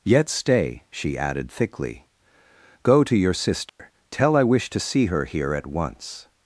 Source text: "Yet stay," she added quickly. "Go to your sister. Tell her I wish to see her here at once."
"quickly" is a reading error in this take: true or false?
true